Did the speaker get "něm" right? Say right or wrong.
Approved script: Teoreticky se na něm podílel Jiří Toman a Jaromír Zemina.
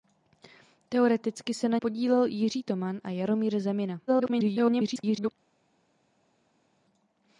wrong